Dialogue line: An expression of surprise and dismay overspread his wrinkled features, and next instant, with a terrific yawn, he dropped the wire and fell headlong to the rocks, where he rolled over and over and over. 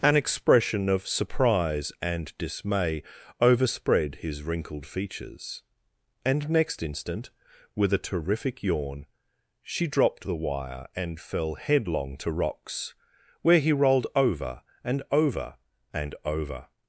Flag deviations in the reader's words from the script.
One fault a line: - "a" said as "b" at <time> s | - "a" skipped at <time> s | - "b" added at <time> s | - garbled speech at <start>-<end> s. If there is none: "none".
- "he" said as "she" at 9.6 s
- "the" skipped at 12.3 s